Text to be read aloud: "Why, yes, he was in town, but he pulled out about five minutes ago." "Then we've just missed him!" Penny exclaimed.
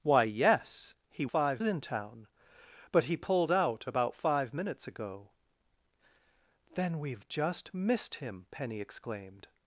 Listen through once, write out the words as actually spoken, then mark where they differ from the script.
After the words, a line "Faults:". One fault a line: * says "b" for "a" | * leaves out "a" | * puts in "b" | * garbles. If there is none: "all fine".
"Why, yes, he five in town, but he pulled out about five minutes ago." "Then we've just missed him!" Penny exclaimed.
Faults:
* says "five" for "was"